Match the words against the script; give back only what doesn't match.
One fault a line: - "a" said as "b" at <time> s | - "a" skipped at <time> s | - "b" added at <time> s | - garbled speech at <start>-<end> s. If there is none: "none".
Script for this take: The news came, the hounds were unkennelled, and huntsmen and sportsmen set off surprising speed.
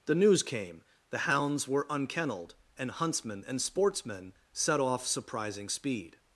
none